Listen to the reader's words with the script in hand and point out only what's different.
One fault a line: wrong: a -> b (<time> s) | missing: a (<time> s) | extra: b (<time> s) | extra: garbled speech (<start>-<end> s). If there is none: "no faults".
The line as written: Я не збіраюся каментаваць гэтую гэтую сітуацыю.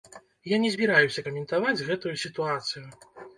missing: гэтую (2.2 s)